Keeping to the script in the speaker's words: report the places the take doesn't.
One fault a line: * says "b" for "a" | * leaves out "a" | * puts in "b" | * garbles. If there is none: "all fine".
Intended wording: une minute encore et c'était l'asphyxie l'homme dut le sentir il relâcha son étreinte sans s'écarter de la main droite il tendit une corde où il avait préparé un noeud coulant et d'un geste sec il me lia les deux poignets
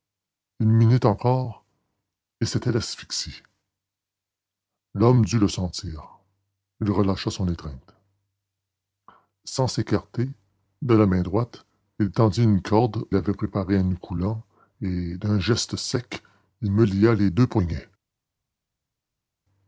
* leaves out "où"